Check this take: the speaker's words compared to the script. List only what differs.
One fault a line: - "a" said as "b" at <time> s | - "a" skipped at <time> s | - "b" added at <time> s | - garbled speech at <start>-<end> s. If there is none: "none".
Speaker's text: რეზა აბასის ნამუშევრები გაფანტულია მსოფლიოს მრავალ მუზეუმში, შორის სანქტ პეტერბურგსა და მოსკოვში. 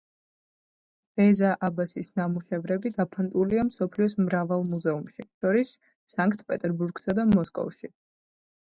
none